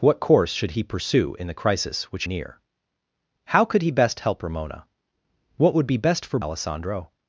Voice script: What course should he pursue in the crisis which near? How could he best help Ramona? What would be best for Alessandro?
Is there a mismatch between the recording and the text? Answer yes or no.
no